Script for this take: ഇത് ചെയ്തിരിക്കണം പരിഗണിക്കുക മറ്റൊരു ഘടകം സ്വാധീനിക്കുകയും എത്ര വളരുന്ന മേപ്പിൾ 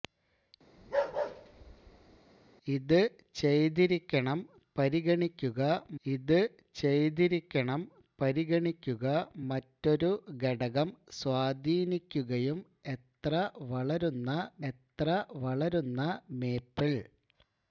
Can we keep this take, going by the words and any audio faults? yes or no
no